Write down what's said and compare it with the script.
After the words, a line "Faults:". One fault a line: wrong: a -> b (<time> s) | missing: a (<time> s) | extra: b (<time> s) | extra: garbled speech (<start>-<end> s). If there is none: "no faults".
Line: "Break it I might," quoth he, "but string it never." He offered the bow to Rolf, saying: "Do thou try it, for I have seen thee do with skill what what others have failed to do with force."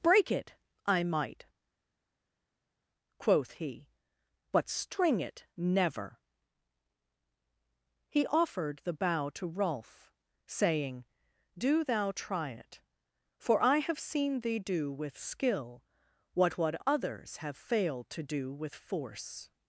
"Break it I might," quoth he, "but string it never." He offered the bow to Rolf, saying: "Do thou try it, for I have seen thee do with skill what what others have failed to do with force."
Faults:
no faults